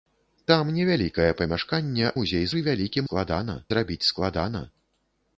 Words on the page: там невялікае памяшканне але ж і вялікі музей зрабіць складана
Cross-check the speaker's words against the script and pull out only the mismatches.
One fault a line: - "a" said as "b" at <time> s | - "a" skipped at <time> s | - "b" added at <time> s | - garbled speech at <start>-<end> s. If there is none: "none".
- "але" said as "музей" at 2.2 s
- "музей" said as "складана" at 3.1 s